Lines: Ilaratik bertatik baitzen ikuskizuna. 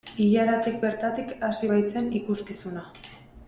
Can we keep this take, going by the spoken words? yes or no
no